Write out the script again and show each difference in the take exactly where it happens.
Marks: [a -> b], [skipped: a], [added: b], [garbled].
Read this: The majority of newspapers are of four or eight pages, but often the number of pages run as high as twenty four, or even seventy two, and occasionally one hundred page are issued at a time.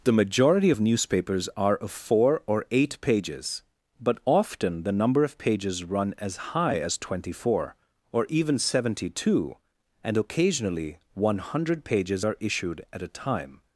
The majority of newspapers are of four or eight pages, but often the number of pages run as high as twenty four, or even seventy two, and occasionally one hundred [page -> pages] are issued at a time.